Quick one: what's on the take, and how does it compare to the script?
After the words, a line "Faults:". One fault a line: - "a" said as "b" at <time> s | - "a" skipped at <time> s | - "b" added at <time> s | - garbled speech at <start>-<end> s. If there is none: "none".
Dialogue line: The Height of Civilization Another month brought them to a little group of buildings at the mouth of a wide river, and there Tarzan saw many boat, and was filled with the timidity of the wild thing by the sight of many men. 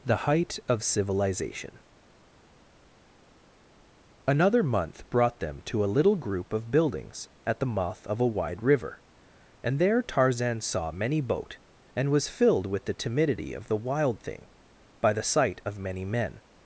The Height of Civilization Another month brought them to a little group of buildings at the mouth of a wide river, and there Tarzan saw many boat, and was filled with the timidity of the wild thing by the sight of many men.
Faults:
none